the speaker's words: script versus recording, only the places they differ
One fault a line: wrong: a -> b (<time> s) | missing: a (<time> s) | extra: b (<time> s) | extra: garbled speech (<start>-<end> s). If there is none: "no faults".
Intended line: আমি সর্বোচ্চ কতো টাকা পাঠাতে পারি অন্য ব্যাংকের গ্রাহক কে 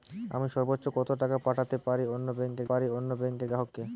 extra: পারি অন্য ব্যাংকের (2.7 s)